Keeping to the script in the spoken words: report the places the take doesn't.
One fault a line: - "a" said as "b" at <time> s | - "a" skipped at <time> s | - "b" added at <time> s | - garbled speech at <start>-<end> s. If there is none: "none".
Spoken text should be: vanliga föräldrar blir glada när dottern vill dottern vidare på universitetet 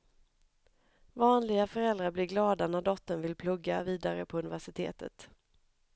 - "dottern" said as "plugga" at 3.4 s